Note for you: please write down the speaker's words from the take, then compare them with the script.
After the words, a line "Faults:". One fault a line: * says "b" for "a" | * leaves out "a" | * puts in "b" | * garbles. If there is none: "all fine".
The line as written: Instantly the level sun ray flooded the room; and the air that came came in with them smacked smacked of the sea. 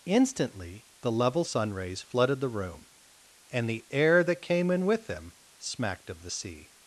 Instantly the level sun rays flooded the room; and the air that came in with them smacked of the sea.
Faults:
* says "rays" for "ray"
* leaves out "came"
* leaves out "smacked"